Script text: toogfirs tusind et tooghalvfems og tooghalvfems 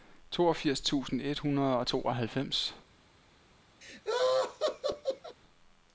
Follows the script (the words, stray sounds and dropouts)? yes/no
no